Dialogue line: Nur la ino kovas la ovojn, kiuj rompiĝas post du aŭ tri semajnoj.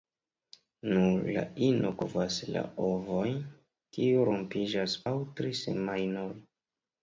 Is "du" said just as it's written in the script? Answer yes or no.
no